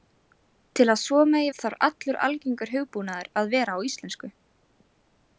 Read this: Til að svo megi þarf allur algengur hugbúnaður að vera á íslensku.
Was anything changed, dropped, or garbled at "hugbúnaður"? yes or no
no